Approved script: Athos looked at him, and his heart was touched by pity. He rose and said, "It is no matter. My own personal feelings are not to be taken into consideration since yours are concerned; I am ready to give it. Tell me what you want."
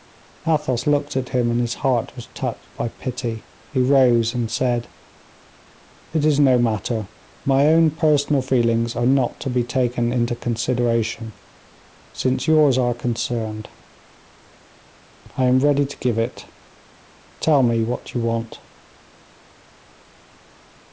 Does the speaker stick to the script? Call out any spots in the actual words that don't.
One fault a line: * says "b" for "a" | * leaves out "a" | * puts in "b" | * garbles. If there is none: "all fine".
all fine